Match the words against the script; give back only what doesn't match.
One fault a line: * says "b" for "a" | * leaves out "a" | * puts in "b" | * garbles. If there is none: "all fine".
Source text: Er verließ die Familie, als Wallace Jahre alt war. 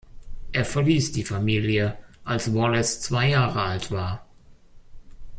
* puts in "zwei"